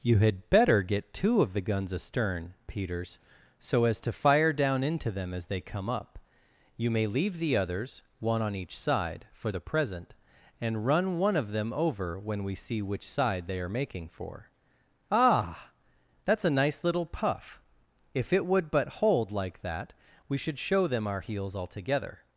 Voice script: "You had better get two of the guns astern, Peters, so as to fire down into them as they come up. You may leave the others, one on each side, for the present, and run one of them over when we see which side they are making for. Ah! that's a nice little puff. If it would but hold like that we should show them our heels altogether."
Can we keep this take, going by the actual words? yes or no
yes